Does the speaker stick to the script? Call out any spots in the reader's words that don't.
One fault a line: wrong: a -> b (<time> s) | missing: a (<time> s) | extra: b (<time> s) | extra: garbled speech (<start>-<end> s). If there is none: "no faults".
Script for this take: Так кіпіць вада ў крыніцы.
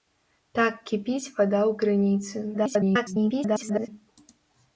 extra: garbled speech (2.5-3.9 s)